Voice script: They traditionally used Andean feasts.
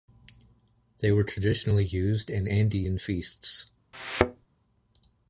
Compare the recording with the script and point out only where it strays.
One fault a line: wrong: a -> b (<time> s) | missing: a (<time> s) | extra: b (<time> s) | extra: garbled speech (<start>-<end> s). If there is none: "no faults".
extra: were (1.1 s)
extra: in (2.3 s)